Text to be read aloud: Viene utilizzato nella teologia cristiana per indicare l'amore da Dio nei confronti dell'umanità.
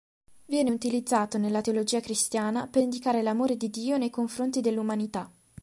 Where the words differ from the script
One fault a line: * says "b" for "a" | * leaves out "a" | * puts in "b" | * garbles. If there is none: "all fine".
* says "di" for "da"